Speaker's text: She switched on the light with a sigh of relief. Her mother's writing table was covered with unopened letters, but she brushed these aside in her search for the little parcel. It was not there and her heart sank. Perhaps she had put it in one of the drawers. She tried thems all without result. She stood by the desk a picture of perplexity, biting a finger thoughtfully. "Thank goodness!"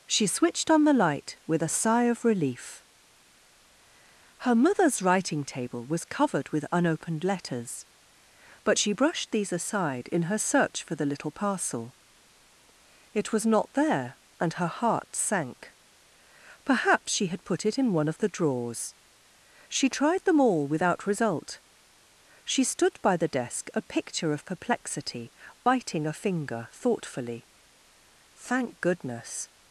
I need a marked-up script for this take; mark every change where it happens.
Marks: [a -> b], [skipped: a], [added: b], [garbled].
She switched on the light with a sigh of relief. Her mother's writing table was covered with unopened letters, but she brushed these aside in her search for the little parcel. It was not there and her heart sank. Perhaps she had put it in one of the drawers. She tried [thems -> them] all without result. She stood by the desk a picture of perplexity, biting a finger thoughtfully. "Thank goodness!"